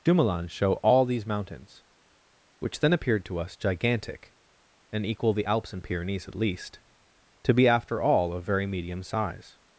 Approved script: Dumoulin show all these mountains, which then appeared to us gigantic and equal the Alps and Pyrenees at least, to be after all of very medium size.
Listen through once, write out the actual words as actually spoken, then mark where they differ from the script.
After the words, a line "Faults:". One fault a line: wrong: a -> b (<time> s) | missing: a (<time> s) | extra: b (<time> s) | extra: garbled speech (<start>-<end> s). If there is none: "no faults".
Dumoulin show all these mountains, which then appeared to us gigantic and equal the Alps and Pyrenees at least, to be after all of very medium size.
Faults:
no faults